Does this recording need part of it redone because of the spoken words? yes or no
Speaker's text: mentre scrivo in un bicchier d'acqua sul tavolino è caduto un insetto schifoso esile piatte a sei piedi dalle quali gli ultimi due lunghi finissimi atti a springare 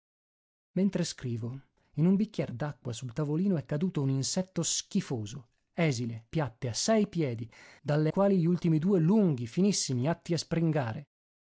no